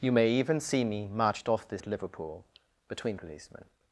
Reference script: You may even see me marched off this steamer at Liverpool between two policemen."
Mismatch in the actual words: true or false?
true